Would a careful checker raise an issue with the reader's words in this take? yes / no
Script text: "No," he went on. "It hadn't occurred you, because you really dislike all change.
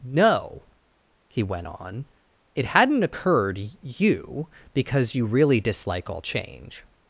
no